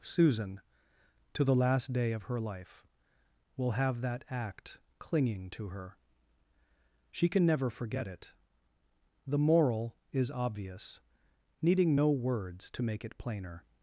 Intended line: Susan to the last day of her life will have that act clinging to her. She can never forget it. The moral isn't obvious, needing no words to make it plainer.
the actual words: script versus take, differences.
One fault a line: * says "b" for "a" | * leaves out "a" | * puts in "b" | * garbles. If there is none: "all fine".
* says "is" for "isn't"